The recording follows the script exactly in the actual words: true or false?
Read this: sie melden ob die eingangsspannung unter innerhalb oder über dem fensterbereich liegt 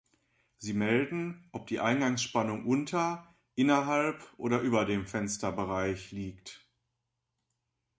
true